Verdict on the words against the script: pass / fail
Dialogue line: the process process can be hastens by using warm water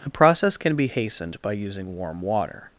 fail